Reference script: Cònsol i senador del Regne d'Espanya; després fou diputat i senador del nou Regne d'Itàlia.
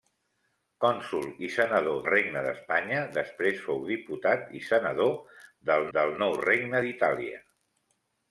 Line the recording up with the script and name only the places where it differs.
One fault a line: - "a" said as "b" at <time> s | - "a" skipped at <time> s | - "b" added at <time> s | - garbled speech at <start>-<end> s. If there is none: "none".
- "del" skipped at 2.0 s
- "del" added at 6.0 s